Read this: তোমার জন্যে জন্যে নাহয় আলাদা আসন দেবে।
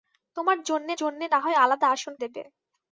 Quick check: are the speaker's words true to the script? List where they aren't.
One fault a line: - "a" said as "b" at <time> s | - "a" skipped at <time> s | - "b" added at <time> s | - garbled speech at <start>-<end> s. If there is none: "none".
none